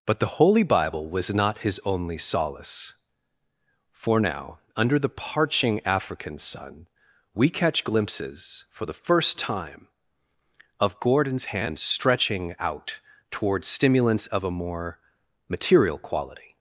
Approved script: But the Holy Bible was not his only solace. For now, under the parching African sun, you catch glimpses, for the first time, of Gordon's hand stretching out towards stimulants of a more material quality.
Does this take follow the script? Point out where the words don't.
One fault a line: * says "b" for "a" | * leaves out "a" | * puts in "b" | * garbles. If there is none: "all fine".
* says "we" for "you"